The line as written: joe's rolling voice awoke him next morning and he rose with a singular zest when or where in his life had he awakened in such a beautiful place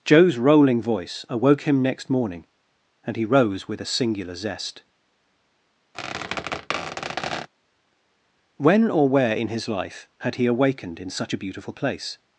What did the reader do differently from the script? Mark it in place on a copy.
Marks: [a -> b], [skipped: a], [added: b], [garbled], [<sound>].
joe's rolling voice awoke him next morning and he rose with a singular zest [squeak] when or where in his life had he awakened in such a beautiful place